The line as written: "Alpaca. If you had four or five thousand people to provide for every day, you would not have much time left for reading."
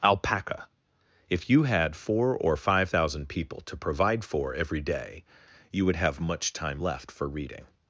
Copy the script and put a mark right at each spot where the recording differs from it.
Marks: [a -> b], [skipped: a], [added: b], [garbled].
"Alpaca. If you had four or five thousand people to provide for every day, you would [skipped: not] have much time left for reading."